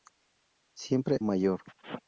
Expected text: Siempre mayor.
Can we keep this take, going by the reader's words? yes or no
yes